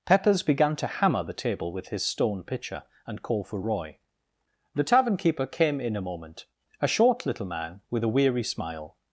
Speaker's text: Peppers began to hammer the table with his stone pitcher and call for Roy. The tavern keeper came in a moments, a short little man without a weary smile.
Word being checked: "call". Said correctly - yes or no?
yes